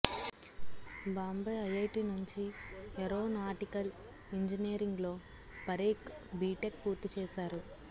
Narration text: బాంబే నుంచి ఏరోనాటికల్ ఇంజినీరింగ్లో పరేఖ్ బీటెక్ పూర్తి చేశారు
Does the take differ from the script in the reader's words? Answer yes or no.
yes